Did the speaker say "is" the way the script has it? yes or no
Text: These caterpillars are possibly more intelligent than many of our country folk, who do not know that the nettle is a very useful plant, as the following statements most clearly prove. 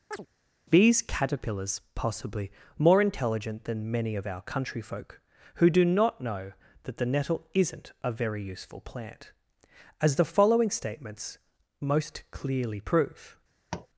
no